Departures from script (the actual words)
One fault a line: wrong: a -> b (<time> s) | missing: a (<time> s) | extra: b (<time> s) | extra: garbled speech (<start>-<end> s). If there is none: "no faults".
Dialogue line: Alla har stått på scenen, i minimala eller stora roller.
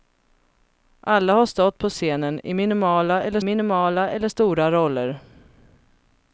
extra: minimala eller (3.4 s)